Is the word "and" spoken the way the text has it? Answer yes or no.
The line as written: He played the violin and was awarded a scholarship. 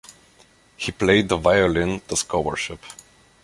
no